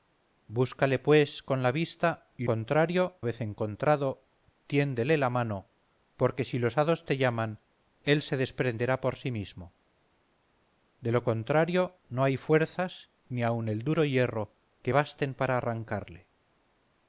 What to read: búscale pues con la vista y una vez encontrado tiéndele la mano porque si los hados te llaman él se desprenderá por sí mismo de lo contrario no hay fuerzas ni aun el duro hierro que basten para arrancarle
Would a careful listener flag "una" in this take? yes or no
yes